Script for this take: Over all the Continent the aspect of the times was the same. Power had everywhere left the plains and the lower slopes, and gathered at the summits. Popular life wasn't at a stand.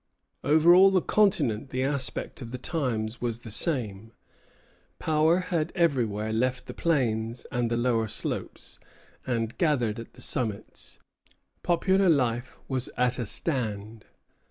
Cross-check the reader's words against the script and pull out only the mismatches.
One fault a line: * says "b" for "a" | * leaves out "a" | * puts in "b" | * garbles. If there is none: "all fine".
* says "was" for "wasn't"